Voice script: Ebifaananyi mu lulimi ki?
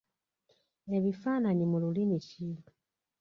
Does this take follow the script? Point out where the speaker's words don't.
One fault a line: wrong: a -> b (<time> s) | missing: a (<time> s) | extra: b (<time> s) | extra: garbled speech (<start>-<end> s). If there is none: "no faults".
no faults